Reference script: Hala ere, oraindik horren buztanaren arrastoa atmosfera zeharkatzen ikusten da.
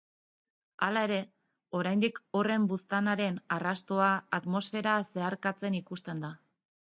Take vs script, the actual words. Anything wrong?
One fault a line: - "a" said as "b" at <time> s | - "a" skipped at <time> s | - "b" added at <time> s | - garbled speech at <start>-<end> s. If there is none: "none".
none